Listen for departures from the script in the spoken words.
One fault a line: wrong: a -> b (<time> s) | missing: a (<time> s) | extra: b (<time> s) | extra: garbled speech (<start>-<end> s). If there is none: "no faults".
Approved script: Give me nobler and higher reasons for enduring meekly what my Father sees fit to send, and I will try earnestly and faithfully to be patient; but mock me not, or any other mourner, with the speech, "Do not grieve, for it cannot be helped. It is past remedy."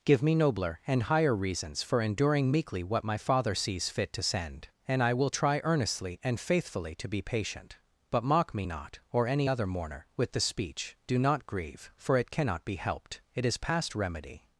no faults